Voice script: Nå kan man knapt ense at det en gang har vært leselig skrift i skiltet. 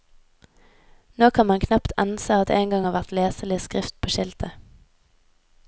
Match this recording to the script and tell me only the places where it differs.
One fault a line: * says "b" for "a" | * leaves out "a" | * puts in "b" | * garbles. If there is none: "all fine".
* says "på" for "i"